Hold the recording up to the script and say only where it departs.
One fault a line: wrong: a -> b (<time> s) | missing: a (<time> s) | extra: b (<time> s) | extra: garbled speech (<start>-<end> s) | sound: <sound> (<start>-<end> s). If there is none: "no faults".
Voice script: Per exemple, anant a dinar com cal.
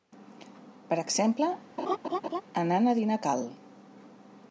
sound: laugh (1.8-2.4 s)
missing: com (3.2 s)